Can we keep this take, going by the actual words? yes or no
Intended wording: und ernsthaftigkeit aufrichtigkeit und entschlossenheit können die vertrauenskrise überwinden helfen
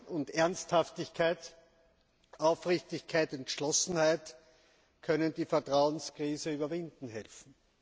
no